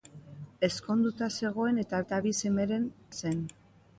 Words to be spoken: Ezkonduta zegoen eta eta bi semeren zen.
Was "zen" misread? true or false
false